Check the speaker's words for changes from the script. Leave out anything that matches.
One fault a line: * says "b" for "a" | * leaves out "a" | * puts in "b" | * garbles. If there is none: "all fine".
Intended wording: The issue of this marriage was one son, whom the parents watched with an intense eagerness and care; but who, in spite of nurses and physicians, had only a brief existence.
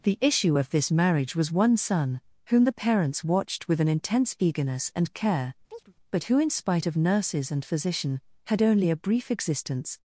* says "physician" for "physicians"